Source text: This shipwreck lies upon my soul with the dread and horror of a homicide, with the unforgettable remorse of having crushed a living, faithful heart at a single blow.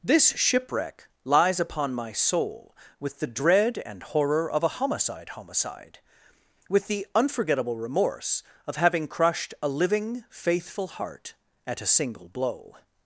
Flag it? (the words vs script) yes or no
yes